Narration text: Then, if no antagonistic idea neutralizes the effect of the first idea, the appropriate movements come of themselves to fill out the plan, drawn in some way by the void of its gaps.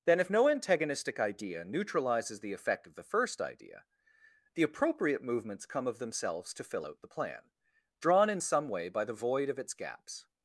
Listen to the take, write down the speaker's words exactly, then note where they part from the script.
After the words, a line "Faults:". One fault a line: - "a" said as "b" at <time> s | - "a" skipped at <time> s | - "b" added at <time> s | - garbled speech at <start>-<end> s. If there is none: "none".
Then, if no antagonistic idea neutralizes the effect of the first idea, the appropriate movements come of themselves to fill out the plan, drawn in some way by the void of its gaps.
Faults:
none